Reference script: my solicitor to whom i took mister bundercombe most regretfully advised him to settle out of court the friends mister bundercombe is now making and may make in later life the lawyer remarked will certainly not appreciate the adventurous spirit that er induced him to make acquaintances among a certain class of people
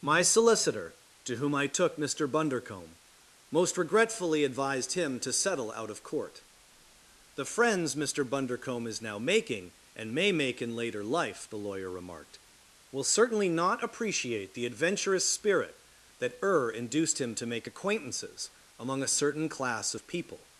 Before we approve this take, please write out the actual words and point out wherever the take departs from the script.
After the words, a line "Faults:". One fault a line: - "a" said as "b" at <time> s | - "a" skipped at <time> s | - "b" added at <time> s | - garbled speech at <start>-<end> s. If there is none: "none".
my solicitor to whom i took mister bundercombe most regretfully advised him to settle out of court the friends mister bundercombe is now making and may make in later life the lawyer remarked will certainly not appreciate the adventurous spirit that er induced him to make acquaintances among a certain class of people
Faults:
none